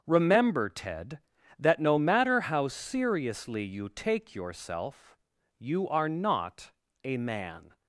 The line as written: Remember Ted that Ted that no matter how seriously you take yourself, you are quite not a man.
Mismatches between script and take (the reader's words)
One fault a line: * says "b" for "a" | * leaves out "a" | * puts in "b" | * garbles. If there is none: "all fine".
* leaves out "Ted that"
* leaves out "quite"